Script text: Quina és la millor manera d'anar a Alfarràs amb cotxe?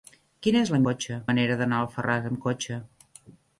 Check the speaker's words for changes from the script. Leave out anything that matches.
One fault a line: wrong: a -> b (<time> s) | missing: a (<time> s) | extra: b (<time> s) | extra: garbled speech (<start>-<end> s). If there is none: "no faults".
wrong: millor -> cotxe (0.9 s)